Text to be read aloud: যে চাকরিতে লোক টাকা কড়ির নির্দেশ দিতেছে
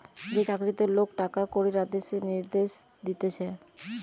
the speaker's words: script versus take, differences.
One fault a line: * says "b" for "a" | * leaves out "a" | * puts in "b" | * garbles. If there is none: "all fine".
* puts in "আদেশ"